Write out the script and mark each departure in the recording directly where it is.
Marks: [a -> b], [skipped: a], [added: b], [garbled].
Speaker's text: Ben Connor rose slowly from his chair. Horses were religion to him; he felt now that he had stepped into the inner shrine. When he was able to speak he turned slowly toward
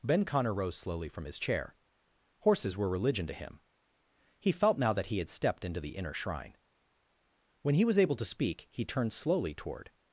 Ben Connor rose slowly from his chair. Horses were religion to him; he felt now that he had stepped into the inner shrine. When he was able to speak he turned slowly toward